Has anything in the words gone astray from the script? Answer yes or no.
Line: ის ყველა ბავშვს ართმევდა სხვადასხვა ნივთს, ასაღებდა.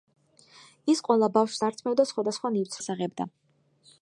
no